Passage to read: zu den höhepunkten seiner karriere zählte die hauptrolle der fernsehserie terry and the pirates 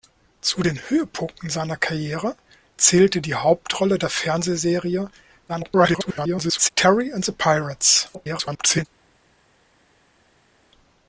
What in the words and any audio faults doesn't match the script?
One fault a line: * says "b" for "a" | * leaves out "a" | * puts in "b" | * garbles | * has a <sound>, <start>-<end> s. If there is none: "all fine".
* garbles
* garbles